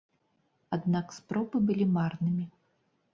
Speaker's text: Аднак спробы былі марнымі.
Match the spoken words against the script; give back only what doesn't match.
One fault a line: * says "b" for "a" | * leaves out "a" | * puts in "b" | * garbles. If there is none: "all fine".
all fine